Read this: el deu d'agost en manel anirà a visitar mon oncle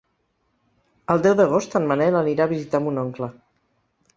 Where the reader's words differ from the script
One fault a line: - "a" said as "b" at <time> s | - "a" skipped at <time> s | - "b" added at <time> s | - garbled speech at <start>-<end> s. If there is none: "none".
none